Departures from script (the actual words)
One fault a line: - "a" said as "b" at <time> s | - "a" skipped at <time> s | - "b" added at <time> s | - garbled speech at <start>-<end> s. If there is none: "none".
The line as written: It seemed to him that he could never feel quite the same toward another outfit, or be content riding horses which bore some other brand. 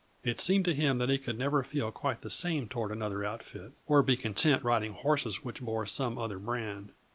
none